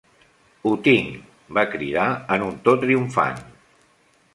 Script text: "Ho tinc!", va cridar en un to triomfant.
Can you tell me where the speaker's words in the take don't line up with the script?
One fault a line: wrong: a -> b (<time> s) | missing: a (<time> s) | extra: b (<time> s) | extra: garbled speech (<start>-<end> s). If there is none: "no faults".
no faults